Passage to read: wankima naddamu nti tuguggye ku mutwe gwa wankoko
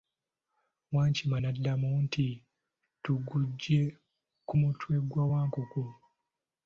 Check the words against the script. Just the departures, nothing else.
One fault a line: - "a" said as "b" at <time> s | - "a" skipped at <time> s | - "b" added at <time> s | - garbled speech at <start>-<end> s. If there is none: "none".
none